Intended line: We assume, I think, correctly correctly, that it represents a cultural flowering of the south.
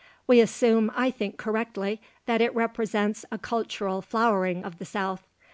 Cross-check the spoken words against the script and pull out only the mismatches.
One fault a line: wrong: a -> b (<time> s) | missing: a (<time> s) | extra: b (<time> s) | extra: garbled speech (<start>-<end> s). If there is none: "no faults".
missing: correctly (2.0 s)